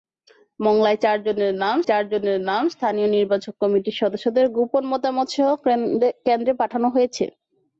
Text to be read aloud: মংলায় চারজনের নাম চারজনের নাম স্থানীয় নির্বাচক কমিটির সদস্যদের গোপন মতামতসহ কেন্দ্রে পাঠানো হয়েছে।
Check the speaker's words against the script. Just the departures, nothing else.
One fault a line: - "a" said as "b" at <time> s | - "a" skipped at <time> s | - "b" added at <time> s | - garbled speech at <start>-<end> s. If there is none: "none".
none